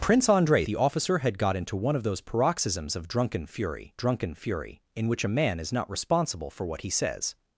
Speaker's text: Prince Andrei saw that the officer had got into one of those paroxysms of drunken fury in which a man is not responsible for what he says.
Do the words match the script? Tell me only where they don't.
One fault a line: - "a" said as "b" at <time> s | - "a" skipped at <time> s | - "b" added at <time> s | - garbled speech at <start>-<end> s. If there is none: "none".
- "saw that" skipped at 0.7 s
- "drunken fury" added at 4.0 s